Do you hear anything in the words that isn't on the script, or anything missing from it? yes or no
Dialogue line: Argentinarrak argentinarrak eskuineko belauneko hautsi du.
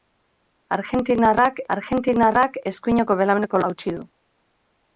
no